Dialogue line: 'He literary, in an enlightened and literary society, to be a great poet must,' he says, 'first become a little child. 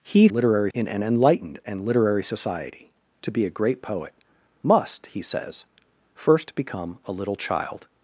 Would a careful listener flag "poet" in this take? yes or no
no